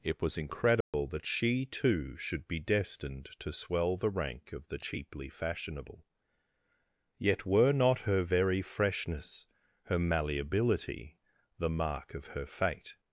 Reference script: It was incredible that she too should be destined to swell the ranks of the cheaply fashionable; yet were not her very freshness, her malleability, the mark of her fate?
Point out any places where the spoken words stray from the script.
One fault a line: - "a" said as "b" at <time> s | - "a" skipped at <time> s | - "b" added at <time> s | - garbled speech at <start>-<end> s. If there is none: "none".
- "ranks" said as "rank" at 4.1 s